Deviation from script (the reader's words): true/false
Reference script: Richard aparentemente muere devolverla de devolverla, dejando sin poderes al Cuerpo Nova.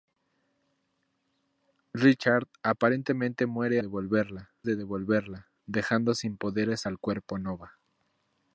false